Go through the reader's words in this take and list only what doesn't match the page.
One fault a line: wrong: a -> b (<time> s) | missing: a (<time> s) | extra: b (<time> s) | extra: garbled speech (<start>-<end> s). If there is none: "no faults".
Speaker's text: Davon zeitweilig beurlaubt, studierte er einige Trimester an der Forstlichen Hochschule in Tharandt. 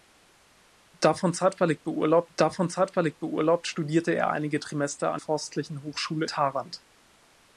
extra: davon zeitweilig beurlaubt (2.3 s)
missing: der (5.2 s)
missing: in (6.3 s)